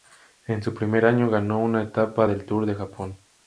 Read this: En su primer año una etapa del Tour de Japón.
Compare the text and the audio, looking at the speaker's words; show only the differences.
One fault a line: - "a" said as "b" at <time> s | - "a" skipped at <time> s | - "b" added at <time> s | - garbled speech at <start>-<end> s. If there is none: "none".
- "ganó" added at 1.3 s